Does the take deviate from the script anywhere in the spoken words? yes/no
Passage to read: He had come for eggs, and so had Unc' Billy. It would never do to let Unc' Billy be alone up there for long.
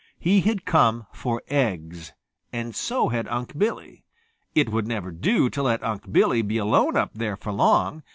no